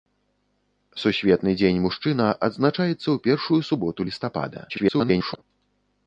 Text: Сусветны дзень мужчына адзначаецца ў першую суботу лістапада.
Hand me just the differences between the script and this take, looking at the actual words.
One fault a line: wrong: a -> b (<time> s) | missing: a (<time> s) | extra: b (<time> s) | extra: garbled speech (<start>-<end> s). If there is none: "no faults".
extra: garbled speech (4.7-5.4 s)